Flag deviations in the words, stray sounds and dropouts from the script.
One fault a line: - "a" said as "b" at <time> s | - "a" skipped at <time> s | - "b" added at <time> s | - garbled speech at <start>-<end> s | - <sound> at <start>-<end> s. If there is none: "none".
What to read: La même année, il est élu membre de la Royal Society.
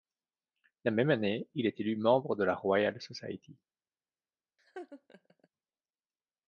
- laugh at 4.6-5.5 s